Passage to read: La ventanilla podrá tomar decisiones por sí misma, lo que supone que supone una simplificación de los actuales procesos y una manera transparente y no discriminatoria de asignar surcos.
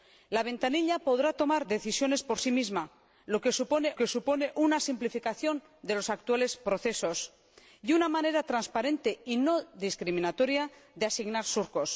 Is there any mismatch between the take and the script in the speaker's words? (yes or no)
no